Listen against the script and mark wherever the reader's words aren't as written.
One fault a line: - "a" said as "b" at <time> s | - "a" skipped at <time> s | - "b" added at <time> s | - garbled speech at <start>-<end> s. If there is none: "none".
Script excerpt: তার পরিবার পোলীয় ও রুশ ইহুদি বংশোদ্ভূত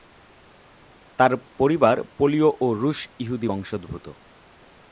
none